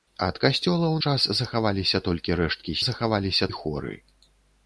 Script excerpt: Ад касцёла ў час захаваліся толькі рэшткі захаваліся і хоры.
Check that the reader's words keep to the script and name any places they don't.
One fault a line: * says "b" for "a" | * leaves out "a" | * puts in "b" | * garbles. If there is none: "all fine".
all fine